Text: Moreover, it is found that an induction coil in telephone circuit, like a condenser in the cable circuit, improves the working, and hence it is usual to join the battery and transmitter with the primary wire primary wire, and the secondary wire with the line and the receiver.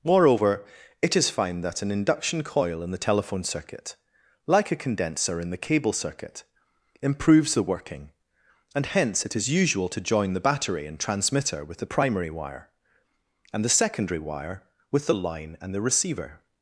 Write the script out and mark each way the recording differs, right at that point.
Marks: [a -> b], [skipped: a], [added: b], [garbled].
Moreover, it is found that an induction coil in [added: the] telephone circuit, like a condenser in the cable circuit, improves the working, and hence it is usual to join the battery and transmitter with the primary wire [skipped: primary wire,] and the secondary wire with the line and the receiver.